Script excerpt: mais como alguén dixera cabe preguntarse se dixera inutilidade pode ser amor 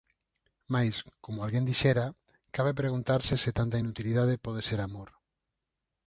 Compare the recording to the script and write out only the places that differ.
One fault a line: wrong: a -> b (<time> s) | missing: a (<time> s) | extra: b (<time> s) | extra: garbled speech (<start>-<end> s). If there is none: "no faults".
wrong: dixera -> tanta (3.6 s)